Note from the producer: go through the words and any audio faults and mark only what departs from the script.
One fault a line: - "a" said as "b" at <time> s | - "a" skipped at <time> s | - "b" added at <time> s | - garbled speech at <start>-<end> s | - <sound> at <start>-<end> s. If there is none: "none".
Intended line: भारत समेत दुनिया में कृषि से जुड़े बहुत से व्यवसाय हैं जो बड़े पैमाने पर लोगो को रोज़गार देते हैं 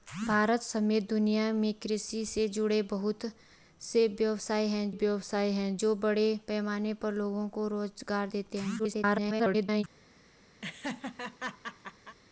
- "व्यवसाय हैं" added at 4.9 s
- garbled speech at 8.8-9.8 s
- laugh at 10.6-12.2 s